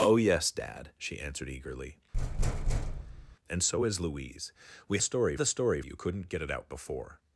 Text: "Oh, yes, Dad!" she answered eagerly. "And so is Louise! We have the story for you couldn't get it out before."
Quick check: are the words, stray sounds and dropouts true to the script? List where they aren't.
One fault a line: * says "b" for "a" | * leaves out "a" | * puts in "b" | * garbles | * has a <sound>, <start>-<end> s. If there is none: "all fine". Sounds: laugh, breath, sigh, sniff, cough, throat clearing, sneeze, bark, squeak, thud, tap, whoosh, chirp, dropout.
* has a thud, 2.1-3.4 s
* says "story" for "have"
* leaves out "for"